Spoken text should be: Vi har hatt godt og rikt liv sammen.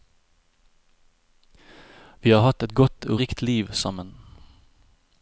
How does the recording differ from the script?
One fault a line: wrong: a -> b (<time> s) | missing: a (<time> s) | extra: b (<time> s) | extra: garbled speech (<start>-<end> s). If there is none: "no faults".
extra: et (2.6 s)